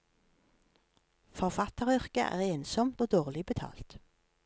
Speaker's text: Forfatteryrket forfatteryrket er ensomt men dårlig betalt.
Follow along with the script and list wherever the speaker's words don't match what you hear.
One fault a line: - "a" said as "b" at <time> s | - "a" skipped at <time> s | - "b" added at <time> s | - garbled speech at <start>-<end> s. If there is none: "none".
- "forfatteryrket" skipped at 2.2 s
- "men" said as "og" at 3.0 s